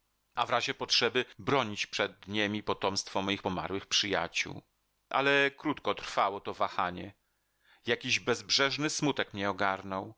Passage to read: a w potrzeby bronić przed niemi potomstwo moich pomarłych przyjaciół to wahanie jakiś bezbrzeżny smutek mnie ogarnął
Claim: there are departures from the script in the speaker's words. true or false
true